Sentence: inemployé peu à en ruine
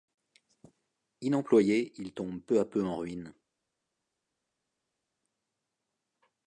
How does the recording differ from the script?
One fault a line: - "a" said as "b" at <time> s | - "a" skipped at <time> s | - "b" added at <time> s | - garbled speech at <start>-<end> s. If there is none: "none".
- "il tombe" added at 2.0 s
- "peu" added at 2.6 s